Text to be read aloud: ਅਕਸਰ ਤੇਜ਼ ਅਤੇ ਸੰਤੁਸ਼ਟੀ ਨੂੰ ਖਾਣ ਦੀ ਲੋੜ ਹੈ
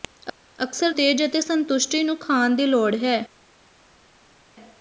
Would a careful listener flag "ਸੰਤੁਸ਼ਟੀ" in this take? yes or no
no